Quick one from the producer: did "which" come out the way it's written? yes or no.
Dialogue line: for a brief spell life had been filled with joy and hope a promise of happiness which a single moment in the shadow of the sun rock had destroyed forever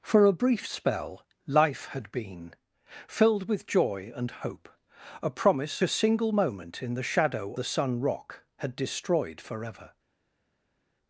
no